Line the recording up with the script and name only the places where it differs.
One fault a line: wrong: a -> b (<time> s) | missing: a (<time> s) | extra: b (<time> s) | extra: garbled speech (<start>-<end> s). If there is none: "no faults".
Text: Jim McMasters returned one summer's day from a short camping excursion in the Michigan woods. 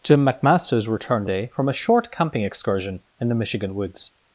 missing: one summer's (1.3 s)